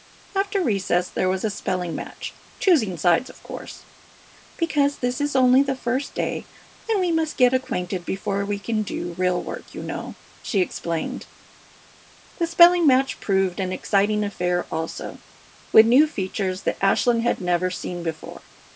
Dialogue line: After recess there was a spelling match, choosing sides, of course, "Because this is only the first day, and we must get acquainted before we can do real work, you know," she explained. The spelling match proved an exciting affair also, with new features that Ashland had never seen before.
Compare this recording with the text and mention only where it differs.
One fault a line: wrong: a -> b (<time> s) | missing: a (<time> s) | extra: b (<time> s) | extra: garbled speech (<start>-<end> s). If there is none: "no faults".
no faults